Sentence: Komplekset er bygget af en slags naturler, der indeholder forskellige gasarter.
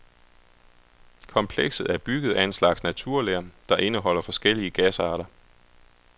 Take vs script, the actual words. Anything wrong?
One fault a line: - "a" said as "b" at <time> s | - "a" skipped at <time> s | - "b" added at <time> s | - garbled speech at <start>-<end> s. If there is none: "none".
none